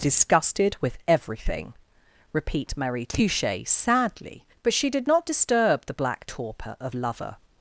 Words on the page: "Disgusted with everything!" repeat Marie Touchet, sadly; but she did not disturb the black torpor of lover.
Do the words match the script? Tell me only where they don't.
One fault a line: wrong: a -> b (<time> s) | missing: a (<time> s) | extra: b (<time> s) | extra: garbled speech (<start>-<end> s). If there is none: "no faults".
no faults